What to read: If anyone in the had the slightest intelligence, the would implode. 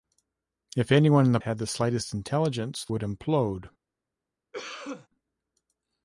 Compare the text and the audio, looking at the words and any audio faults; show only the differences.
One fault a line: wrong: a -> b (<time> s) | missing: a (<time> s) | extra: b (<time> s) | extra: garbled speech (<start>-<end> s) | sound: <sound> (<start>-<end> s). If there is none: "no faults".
sound: cough (4.5-5.1 s)